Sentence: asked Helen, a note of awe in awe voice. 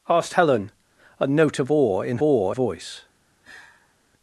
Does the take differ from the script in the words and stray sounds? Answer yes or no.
yes